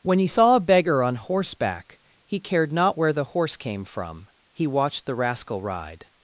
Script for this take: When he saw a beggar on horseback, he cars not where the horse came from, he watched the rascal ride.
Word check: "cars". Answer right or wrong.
wrong